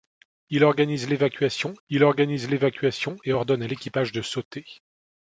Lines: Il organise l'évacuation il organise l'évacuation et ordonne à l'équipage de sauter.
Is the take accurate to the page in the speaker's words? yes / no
yes